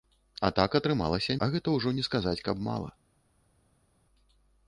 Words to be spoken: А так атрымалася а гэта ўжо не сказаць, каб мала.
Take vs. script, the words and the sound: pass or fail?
pass